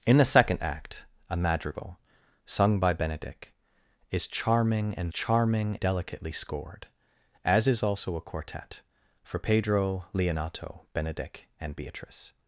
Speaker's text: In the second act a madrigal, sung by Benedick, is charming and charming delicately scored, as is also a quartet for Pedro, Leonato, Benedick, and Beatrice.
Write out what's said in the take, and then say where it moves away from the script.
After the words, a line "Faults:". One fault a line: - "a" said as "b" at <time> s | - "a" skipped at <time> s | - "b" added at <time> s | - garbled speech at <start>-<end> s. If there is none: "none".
In the second act a madrigal, sung by Benedick, is charming and charming delicately scored, as is also a quartet for Pedro, Leonato, Benedick, and Beatrice.
Faults:
none